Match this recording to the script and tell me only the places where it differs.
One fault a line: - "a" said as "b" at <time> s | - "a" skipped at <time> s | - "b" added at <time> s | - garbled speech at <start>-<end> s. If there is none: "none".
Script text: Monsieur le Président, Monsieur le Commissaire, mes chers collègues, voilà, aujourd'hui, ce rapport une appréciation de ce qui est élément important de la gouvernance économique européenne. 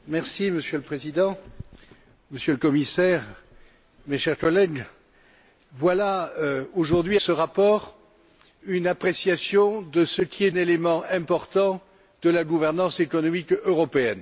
none